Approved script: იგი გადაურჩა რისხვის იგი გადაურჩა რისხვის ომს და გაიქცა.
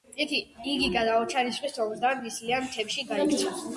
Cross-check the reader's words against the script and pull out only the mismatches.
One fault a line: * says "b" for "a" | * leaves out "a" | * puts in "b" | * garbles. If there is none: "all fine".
* says "ომს და ნისლიან მთებში" for "იგი გადაურჩა რისხვის ომს და"